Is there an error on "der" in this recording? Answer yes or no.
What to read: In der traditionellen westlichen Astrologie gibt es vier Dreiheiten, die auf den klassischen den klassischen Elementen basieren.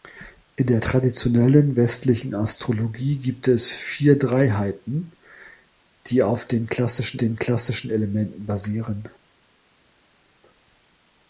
no